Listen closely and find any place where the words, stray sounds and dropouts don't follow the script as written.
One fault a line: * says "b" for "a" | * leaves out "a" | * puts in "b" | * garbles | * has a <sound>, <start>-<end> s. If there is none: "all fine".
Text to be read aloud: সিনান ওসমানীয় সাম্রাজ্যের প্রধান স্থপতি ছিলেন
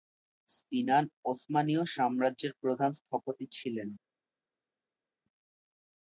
all fine